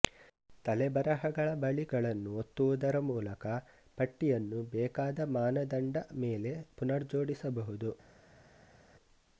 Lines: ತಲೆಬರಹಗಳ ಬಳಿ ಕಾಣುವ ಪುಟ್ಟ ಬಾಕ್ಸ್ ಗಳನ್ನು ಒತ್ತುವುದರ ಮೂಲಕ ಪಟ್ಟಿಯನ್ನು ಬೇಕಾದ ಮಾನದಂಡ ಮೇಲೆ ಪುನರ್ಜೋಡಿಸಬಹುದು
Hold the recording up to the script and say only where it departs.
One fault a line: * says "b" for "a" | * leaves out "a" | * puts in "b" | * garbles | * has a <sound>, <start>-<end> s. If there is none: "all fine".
* leaves out "ಕಾಣುವ ಪುಟ್ಟ ಬಾಕ್ಸ್"